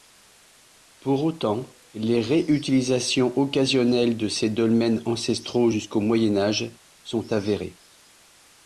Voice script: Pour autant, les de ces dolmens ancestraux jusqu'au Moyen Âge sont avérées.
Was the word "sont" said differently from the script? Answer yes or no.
no